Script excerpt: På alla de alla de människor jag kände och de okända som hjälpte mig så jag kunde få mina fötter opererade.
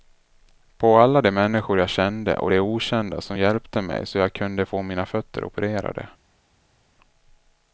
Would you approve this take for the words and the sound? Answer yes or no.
no